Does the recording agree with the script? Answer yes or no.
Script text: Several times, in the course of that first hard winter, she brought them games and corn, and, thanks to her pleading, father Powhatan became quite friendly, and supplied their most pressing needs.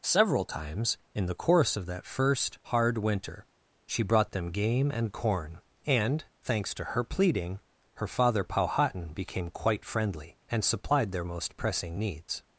no